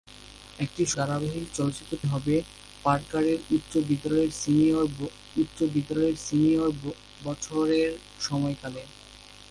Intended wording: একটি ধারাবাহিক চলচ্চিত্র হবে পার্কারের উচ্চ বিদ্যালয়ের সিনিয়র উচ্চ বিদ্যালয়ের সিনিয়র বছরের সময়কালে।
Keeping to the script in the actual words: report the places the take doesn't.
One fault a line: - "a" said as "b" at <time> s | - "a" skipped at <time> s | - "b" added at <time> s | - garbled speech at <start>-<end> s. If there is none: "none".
none